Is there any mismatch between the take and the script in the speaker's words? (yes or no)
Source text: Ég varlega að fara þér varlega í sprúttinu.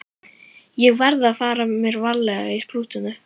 yes